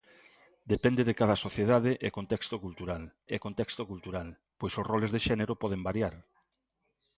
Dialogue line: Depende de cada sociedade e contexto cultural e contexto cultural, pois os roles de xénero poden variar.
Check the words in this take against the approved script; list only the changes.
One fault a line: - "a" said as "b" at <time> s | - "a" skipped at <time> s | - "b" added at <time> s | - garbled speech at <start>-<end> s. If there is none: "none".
none